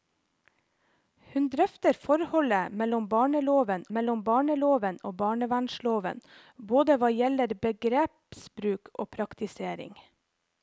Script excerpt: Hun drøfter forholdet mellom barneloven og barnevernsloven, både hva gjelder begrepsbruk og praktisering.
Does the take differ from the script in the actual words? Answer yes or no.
yes